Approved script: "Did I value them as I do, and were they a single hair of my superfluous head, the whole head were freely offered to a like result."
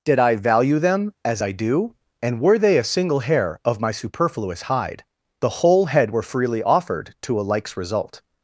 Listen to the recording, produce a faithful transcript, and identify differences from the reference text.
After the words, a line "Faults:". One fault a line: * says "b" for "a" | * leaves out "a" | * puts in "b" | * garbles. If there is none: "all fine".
"Did I value them as I do, and were they a single hair of my superfluous hide, the whole head were freely offered to a likes result."
Faults:
* says "hide" for "head"
* says "likes" for "like"